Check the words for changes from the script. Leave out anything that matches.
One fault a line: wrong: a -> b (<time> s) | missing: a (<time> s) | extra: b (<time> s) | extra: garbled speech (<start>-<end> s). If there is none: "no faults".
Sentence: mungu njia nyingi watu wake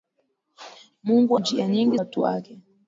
no faults